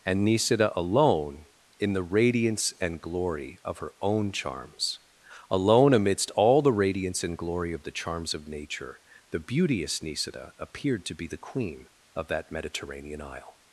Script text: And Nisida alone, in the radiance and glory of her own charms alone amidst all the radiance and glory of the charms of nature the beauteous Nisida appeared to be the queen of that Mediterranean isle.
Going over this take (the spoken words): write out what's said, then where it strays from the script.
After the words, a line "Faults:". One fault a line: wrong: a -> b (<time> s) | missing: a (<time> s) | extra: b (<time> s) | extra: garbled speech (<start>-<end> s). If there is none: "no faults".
And Nisida alone, in the radiance and glory of her own charms alone amidst all the radiance and glory of the charms of nature the beauteous Nisida appeared to be the queen of that Mediterranean isle.
Faults:
no faults